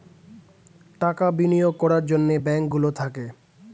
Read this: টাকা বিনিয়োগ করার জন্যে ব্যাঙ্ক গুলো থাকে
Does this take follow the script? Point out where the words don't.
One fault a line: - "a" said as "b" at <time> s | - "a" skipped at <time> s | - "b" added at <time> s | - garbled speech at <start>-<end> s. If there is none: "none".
none